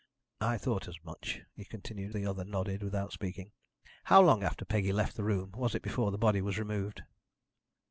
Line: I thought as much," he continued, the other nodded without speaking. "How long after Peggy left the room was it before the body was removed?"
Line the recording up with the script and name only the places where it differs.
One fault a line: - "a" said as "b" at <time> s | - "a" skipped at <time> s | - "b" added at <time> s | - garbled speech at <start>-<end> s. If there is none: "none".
none